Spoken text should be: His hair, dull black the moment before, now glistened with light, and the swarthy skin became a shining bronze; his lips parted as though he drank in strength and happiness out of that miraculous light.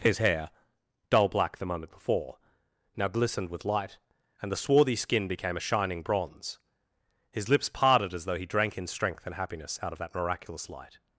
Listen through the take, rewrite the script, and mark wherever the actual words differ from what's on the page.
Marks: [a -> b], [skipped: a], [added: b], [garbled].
His hair, dull black the moment before, now glistened with light, and the swarthy skin became a shining bronze; his lips parted as though he drank in strength and happiness out of that miraculous light.